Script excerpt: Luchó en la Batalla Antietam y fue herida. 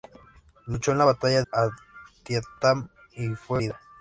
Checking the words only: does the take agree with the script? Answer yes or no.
yes